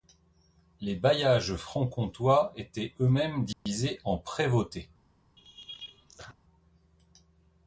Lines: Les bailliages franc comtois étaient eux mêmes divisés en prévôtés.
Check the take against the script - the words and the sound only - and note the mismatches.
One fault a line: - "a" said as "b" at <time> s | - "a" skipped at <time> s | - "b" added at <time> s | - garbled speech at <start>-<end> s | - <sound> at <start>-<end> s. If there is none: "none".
- dropout at 3.5-3.7 s
- laugh at 5.4-6.3 s